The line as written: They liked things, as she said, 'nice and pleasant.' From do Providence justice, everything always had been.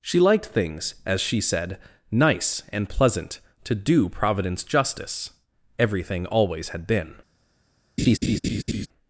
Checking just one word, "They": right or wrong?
wrong